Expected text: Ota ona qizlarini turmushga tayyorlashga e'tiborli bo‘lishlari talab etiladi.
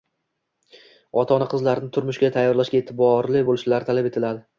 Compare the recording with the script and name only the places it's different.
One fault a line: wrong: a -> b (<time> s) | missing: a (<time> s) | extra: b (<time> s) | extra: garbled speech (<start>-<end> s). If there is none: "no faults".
no faults